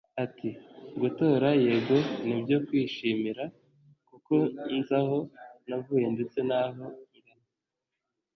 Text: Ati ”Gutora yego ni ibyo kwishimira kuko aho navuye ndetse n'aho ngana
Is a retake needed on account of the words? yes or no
yes